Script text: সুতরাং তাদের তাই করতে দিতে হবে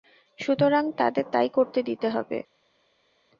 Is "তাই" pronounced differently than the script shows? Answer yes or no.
no